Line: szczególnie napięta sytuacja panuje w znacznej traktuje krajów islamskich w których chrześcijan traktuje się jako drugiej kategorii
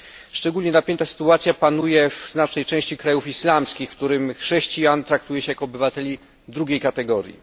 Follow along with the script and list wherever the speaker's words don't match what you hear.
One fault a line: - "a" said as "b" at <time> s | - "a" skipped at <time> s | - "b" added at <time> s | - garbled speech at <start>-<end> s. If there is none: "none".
- "traktuje" said as "części" at 2.6 s
- "obywateli" added at 5.6 s